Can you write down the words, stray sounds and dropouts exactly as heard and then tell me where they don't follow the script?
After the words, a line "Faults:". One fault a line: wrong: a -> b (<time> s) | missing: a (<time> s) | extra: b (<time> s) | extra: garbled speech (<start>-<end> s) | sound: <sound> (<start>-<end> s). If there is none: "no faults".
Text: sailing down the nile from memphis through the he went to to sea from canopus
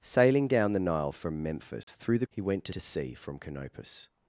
sailing down the nile from memphis through the he went to to sea from canopus
Faults:
sound: dropout (1.8-1.9 s)